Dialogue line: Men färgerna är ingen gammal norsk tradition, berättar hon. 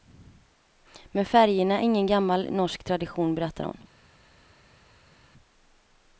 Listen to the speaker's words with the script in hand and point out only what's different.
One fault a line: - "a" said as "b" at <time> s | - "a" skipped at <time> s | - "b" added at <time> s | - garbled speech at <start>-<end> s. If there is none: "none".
none